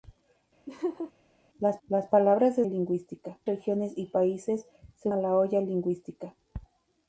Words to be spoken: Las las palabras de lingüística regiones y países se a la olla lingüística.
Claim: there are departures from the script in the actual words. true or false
false